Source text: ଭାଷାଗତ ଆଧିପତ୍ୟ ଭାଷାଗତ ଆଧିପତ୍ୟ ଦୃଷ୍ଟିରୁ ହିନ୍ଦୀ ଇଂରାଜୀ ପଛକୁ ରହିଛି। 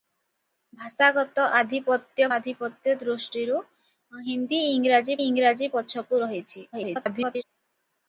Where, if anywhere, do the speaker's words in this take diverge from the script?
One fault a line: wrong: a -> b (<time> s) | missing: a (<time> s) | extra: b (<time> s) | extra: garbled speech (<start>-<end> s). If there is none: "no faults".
missing: ଭାଷାଗତ (2.3 s)
extra: ଇଂରାଜୀ (5.2 s)
extra: garbled speech (6.7-7.4 s)